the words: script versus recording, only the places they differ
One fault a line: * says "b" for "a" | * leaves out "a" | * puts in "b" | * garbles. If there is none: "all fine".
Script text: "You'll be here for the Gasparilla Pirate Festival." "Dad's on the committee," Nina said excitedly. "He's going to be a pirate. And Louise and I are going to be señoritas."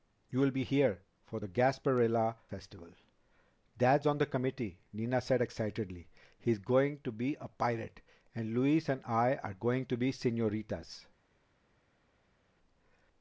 * leaves out "Pirate"